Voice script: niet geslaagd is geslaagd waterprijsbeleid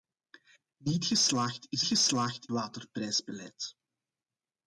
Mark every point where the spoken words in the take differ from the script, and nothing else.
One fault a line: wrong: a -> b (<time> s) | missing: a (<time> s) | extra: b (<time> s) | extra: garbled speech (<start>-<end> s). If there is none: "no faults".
no faults